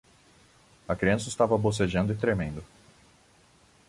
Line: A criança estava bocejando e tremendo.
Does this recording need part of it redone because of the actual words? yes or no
no